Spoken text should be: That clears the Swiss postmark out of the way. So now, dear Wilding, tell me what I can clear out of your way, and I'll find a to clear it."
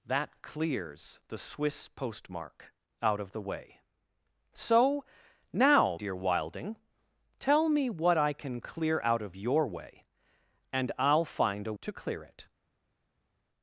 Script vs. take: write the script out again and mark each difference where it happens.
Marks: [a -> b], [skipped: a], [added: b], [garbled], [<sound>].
That clears the Swiss postmark out of the way. So now, dear Wilding, tell me what I can clear out of your way, and I'll find a to clear it."